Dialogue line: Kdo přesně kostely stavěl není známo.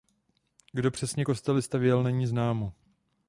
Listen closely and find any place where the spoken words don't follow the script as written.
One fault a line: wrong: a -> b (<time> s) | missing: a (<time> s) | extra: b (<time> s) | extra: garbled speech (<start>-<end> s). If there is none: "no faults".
no faults